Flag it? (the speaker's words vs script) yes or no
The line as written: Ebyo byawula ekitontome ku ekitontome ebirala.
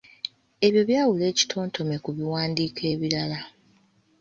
yes